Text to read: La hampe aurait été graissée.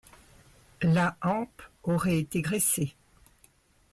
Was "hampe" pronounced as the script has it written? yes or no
yes